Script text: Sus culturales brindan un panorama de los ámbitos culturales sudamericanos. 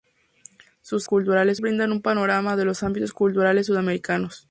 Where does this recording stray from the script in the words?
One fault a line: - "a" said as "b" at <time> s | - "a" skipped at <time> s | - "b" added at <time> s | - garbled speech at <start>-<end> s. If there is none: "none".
none